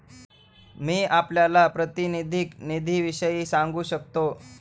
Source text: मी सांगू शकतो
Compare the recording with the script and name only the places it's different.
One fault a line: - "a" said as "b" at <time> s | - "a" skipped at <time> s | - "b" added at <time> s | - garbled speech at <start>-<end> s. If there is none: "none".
- "आपल्याला प्रातिनिधिक निधीविषयी" added at 1.0 s